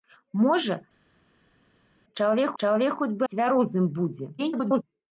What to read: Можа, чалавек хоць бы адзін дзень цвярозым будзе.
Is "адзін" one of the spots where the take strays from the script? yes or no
yes